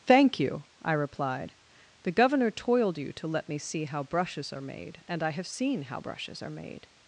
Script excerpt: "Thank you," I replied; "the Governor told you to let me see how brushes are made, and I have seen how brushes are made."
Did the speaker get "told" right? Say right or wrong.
wrong